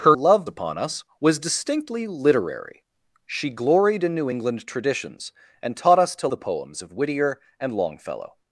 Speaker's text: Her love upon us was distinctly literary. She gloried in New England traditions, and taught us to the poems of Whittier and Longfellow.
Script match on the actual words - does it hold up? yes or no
yes